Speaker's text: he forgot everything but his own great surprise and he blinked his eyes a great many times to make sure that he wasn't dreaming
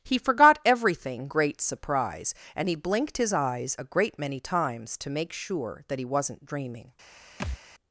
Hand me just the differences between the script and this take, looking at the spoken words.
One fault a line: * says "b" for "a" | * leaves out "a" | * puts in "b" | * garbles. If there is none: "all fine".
* leaves out "but his own"